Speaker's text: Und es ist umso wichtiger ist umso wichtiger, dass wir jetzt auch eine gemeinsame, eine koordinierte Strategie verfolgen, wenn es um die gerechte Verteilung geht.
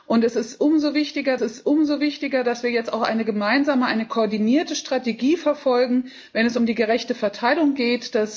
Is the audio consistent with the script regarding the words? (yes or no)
yes